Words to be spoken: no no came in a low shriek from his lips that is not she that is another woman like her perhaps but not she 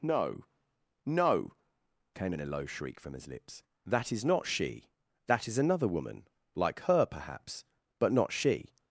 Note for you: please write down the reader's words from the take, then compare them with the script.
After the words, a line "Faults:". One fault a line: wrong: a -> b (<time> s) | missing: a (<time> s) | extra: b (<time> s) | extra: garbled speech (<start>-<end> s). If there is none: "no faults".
no no came in a low shriek from his lips that is not she that is another woman like her perhaps but not she
Faults:
no faults